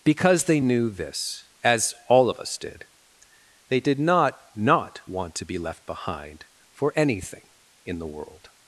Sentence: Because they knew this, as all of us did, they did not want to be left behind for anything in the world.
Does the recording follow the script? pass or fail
fail